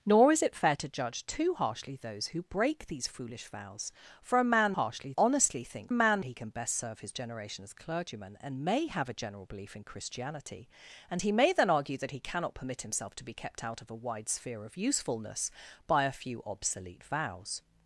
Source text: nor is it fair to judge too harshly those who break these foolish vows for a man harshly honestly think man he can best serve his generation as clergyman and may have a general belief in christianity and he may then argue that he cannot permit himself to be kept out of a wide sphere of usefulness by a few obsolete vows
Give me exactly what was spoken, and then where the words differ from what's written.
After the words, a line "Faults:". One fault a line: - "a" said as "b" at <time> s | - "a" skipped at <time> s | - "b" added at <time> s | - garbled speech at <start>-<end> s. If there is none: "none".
nor is it fair to judge too harshly those who break these foolish vows for a man harshly honestly think man he can best serve his generation as clergyman and may have a general belief in christianity and he may then argue that he cannot permit himself to be kept out of a wide sphere of usefulness by a few obsolete vows
Faults:
none